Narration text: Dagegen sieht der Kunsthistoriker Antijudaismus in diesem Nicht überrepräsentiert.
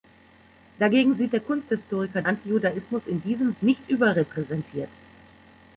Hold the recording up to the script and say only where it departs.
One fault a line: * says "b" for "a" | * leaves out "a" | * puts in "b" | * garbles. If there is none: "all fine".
all fine